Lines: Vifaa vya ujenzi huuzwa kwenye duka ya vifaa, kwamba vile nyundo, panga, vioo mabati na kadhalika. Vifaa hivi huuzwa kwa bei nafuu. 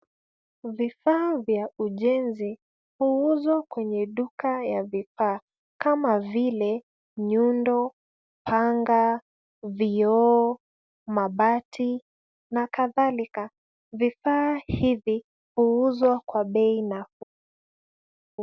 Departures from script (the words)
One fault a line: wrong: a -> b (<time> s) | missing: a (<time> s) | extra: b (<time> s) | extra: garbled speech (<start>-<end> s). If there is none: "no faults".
wrong: kwamba -> kama (5.8 s)